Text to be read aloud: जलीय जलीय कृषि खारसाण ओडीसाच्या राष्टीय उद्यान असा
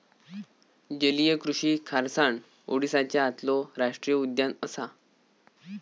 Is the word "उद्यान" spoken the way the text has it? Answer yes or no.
yes